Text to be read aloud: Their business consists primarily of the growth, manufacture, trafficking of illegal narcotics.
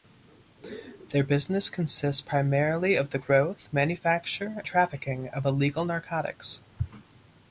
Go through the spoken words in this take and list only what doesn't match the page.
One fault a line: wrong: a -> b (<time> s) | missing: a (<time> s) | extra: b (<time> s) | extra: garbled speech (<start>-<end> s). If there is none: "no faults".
no faults